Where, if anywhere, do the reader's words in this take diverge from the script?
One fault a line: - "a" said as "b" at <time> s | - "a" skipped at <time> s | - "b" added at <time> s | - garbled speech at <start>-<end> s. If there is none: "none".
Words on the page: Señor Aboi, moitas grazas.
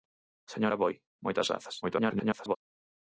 - garbled speech at 1.8-2.6 s